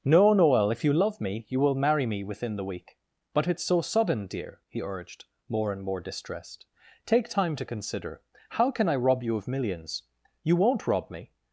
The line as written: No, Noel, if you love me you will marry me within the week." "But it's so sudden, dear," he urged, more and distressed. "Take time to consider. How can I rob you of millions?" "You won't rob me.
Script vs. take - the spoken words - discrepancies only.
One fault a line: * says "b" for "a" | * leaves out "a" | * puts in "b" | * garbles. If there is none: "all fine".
* puts in "more"